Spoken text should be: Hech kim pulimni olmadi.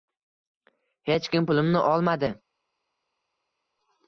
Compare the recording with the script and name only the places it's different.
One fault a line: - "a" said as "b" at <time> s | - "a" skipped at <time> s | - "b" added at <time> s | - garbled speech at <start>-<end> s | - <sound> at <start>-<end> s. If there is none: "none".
none